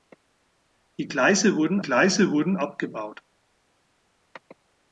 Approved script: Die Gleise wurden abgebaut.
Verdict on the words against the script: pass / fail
fail